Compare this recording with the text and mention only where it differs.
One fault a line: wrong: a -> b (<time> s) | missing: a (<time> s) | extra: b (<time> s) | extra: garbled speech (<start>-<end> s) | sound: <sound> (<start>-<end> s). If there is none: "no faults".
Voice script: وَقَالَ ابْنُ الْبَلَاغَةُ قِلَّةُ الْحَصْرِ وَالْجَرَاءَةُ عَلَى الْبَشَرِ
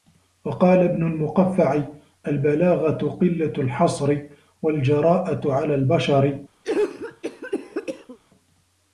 extra: الْمُقَفَّعِ (1.0 s)
sound: cough (6.6-8.2 s)